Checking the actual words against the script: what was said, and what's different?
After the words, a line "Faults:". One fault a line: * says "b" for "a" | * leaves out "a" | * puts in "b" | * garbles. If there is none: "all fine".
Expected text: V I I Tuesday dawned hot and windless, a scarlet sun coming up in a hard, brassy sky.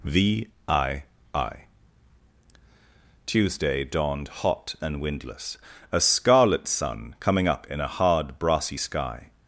V I I Tuesday dawned hot and windless, a scarlet sun coming up in a hard, brassy sky.
Faults:
all fine